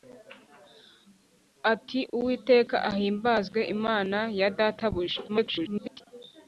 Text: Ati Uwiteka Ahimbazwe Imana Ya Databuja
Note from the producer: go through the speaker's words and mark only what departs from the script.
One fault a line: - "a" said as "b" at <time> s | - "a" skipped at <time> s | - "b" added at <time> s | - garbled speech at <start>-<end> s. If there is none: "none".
- garbled speech at 5.3-6.0 s